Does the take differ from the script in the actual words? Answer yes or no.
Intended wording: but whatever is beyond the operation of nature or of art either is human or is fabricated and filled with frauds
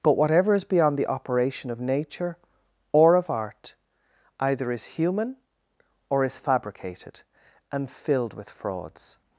no